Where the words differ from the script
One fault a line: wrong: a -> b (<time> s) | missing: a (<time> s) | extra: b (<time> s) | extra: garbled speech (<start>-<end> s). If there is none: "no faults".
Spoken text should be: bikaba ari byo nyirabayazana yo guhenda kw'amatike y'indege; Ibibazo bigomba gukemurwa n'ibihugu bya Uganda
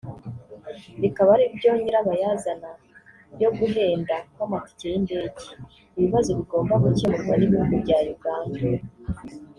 no faults